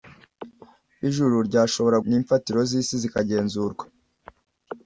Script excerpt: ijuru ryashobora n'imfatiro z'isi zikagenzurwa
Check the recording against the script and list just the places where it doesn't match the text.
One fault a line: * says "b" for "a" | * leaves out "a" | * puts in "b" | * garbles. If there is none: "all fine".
all fine